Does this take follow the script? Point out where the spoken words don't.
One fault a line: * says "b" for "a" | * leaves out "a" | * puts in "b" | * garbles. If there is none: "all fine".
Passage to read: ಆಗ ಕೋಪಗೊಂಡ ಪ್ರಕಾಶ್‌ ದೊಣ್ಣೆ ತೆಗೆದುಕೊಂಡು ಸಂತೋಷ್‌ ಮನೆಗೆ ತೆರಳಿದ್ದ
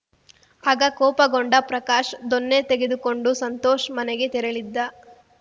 all fine